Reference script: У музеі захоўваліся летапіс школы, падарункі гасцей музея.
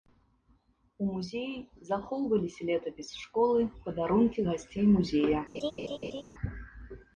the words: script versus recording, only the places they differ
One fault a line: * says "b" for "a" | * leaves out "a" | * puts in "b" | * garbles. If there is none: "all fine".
all fine